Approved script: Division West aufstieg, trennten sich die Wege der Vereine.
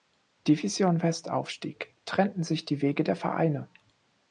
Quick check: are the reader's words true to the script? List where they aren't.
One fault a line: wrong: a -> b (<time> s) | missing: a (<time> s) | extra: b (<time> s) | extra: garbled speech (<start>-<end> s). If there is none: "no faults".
no faults